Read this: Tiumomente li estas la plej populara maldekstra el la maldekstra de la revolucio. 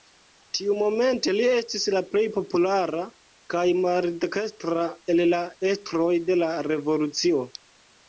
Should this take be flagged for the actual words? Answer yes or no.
yes